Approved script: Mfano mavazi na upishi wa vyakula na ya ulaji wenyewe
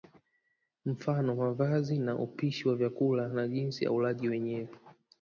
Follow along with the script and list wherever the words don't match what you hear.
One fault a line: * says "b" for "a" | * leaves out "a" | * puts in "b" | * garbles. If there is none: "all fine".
* puts in "jinsi"